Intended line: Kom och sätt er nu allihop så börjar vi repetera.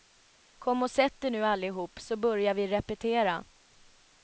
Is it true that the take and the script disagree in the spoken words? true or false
false